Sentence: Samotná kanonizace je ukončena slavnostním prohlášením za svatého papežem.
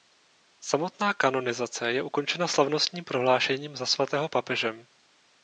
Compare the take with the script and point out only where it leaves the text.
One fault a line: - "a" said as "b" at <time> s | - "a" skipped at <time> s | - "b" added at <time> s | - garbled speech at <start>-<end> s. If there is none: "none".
none